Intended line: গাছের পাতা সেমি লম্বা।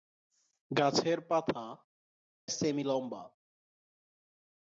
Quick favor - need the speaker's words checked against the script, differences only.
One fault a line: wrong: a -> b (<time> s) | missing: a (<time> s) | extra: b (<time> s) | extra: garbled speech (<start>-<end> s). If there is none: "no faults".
no faults